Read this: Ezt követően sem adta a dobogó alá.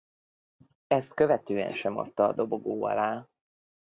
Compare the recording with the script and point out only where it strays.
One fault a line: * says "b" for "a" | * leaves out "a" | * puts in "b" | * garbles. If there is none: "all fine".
all fine